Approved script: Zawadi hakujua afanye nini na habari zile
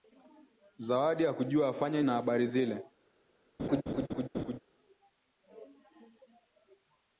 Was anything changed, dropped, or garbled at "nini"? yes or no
yes